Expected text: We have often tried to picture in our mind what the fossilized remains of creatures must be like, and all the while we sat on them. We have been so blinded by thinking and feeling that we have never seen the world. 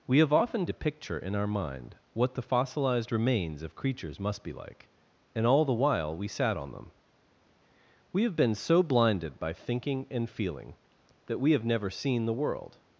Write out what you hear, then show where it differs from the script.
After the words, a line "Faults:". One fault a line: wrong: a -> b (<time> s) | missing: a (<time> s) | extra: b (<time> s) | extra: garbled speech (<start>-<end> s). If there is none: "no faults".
We have often to picture in our mind what the fossilized remains of creatures must be like, and all the while we sat on them. We have been so blinded by thinking and feeling that we have never seen the world.
Faults:
missing: tried (0.7 s)